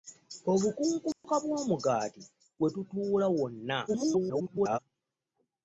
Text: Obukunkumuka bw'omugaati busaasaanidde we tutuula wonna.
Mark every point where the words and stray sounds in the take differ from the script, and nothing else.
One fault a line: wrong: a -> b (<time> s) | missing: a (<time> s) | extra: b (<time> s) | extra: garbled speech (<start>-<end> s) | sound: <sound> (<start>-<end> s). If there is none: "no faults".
sound: dropout (1.1-1.2 s)
missing: busaasaanidde (2.2 s)
extra: garbled speech (3.9-4.8 s)